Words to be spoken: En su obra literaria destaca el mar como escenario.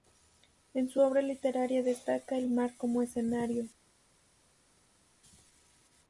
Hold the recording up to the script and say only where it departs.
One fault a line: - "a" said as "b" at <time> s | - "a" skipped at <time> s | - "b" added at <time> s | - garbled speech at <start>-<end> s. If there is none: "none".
none